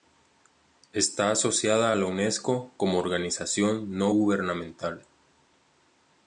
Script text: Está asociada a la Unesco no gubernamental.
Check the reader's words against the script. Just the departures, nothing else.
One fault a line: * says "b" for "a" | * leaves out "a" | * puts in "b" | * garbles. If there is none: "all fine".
* puts in "como organización"